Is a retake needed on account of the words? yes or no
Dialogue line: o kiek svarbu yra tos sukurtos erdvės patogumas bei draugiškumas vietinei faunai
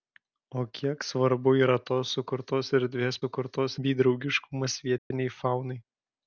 yes